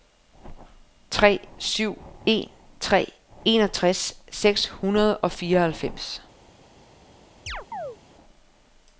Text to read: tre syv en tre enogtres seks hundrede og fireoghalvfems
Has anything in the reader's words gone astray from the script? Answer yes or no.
no